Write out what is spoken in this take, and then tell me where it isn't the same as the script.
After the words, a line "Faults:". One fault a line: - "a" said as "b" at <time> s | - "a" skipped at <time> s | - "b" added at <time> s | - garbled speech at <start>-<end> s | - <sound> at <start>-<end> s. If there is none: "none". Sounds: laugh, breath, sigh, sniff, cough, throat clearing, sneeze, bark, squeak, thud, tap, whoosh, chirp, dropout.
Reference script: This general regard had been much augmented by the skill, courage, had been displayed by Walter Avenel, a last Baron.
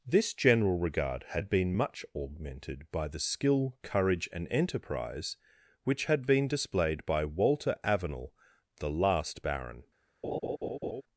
This general regard had been much augmented by the skill, courage, and enterprise which had been displayed by Walter Avenel, the last Baron.
Faults:
- "and enterprise which" added at 4.3 s
- "a" said as "the" at 8.8 s
- laugh at 10.2-11.0 s